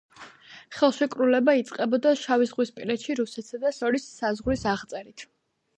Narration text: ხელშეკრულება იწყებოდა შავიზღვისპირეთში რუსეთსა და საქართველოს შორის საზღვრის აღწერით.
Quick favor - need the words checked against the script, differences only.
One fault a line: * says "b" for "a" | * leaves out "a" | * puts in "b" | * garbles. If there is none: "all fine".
* leaves out "საქართველოს"